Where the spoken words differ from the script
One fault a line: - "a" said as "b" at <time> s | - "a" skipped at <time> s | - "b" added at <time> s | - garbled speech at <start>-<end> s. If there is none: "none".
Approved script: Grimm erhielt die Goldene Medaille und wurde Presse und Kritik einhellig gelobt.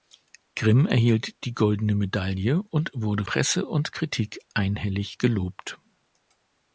none